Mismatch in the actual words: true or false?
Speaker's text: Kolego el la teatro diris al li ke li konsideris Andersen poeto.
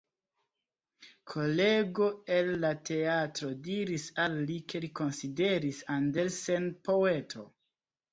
false